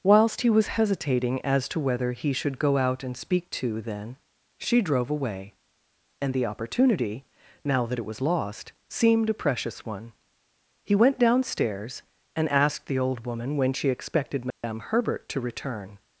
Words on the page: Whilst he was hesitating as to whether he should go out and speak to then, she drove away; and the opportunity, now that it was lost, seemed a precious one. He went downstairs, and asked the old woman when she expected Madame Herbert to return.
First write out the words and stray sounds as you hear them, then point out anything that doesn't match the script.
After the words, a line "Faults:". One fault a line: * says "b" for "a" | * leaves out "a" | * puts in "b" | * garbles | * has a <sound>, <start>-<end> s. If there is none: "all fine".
Whilst he was hesitating as to whether he should go out and speak to then, she drove away; and the opportunity, now that it was lost, seemed a precious one. He went downstairs, and asked the old woman when she expected Madame Herbert to return.
Faults:
* has a dropout, 14.5-14.6 s